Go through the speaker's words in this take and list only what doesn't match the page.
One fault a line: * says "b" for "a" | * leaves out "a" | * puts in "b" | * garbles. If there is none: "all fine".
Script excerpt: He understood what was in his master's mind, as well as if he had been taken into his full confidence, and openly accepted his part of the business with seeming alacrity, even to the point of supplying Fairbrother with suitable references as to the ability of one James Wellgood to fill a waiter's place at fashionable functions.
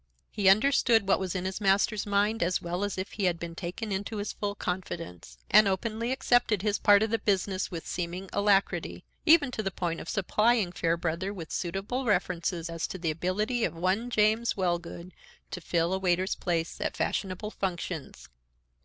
all fine